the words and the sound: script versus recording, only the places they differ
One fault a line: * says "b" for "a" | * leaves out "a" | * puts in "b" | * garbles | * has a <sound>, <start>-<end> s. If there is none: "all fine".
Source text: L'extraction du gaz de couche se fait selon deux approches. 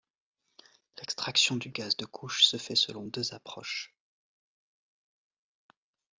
all fine